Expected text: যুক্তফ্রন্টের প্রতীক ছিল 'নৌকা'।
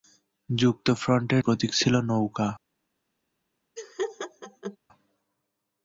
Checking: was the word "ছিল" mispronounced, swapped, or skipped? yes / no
no